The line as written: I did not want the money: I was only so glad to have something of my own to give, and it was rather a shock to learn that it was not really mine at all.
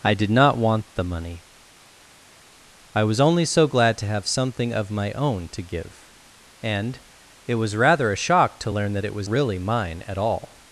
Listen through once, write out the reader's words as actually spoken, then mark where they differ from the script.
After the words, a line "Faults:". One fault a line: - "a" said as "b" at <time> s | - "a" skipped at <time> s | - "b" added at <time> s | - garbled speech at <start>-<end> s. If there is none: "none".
I did not want the money: I was only so glad to have something of my own to give, and it was rather a shock to learn that it was really mine at all.
Faults:
- "not" skipped at 9.3 s